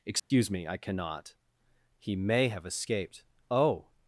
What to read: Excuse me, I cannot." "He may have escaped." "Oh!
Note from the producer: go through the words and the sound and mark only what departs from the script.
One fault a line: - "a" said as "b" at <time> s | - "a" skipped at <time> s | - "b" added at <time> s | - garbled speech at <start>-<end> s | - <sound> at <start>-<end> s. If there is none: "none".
- dropout at 0.2-0.3 s